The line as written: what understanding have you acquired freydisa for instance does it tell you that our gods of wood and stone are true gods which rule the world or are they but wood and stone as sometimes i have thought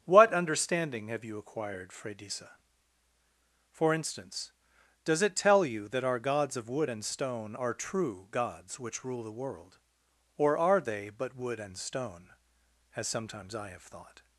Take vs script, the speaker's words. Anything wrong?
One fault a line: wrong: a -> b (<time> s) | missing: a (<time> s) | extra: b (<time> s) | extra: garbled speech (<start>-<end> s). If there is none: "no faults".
no faults